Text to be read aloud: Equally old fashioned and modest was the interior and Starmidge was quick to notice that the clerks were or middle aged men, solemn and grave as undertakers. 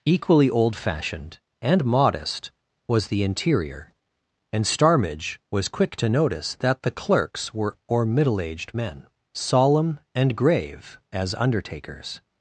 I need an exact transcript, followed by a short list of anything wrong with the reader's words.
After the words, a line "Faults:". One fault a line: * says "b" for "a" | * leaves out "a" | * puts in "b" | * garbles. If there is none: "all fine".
Equally old fashioned and modest was the interior and Starmidge was quick to notice that the clerks were or middle aged men, solemn and grave as undertakers.
Faults:
all fine